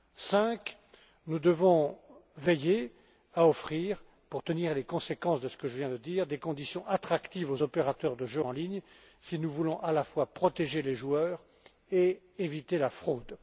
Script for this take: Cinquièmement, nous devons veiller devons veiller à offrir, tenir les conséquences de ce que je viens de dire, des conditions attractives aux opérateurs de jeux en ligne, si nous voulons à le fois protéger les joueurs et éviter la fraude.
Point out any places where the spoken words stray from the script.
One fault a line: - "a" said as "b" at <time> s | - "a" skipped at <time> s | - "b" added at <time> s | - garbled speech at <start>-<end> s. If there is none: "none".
- "devons veiller" skipped at 2.9 s
- "pour" added at 4.3 s
- "le" said as "la" at 9.9 s